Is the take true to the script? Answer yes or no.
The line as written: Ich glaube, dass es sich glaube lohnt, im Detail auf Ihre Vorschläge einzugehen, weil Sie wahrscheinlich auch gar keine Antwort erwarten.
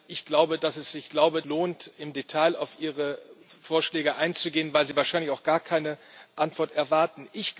yes